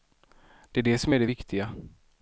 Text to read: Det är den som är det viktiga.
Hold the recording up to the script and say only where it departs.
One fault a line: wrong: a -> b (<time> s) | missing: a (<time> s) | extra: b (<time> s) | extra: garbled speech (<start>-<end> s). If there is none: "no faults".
wrong: den -> det (0.8 s)